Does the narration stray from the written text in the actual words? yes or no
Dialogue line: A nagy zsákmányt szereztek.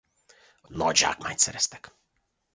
no